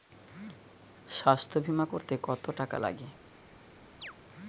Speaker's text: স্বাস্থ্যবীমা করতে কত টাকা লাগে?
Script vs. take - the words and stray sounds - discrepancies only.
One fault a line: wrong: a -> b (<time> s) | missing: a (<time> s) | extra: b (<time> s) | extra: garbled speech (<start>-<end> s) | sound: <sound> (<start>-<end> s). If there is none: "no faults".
sound: chirp (4.0-4.1 s)